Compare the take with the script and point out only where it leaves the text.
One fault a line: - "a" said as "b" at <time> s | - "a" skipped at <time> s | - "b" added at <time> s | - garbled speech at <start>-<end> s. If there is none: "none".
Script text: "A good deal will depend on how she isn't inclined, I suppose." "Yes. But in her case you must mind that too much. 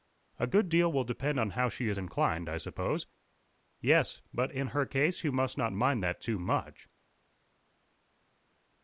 - "isn't" said as "is" at 1.9 s
- "not" added at 5.6 s